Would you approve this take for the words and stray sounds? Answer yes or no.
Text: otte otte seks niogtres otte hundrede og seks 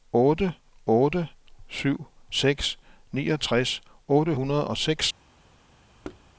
no